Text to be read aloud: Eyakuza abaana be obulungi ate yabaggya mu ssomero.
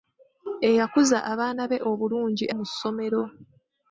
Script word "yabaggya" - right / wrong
wrong